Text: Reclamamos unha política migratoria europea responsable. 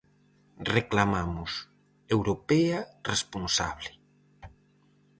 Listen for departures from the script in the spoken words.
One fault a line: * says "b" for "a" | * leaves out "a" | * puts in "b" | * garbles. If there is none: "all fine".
* leaves out "unha política migratoria"